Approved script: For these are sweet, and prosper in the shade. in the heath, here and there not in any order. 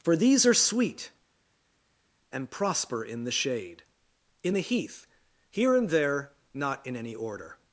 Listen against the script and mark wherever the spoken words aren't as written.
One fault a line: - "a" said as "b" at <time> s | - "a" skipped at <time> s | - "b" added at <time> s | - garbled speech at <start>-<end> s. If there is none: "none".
none